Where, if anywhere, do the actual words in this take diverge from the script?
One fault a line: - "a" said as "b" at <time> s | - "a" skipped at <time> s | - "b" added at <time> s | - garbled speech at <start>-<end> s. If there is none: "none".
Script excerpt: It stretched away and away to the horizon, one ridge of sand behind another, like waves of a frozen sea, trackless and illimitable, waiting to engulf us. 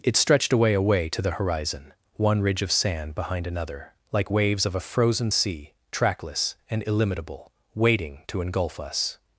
- "and" skipped at 0.7 s